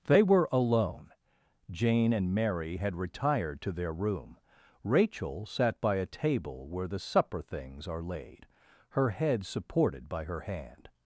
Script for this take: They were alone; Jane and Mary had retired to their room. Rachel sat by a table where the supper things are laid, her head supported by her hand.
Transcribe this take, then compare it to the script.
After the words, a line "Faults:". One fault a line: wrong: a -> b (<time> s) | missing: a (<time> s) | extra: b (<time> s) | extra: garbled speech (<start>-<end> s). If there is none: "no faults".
They were alone; Jane and Mary had retired to their room. Rachel sat by a table where the supper things are laid, her head supported by her hand.
Faults:
no faults